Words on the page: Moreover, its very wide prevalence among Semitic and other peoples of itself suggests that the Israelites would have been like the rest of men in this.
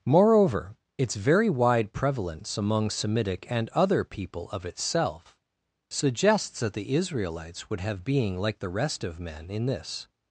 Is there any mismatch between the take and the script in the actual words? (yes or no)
yes